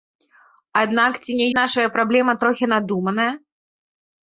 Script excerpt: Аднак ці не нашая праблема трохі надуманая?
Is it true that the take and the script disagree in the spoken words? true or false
false